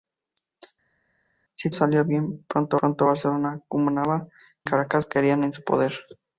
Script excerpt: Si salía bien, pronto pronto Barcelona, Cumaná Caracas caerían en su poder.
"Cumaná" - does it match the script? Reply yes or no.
yes